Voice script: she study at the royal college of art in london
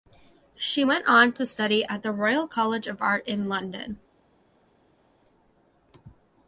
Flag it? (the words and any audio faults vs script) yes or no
yes